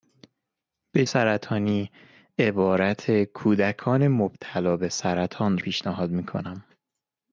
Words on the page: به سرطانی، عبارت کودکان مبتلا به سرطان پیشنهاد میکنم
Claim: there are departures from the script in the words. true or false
false